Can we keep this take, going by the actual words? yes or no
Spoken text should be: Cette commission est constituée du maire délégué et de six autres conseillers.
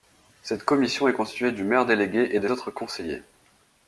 no